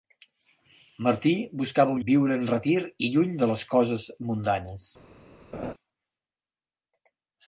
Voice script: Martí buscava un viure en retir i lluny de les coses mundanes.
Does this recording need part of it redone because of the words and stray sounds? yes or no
yes